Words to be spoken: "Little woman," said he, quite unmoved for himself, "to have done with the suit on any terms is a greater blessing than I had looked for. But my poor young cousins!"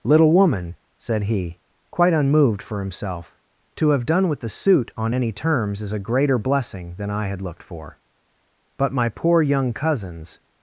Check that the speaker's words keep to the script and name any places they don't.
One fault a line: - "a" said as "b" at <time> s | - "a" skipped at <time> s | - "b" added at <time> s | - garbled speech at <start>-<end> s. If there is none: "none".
none